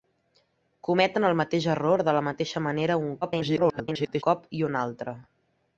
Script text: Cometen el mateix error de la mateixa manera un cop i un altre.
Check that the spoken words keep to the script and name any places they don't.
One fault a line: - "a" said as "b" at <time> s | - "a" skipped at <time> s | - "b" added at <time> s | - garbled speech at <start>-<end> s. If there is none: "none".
- garbled speech at 3.2-4.2 s